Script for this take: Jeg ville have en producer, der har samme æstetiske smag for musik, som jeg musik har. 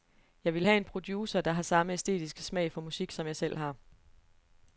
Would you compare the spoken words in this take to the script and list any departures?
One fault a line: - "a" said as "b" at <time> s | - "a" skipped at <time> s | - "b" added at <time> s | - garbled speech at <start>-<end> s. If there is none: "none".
- "musik" said as "selv" at 3.3 s